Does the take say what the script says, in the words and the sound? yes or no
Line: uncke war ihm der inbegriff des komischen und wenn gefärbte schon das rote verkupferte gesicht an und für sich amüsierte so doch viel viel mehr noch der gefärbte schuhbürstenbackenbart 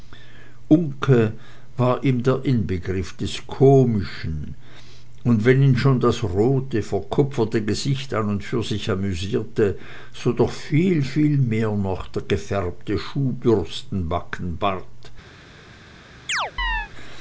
no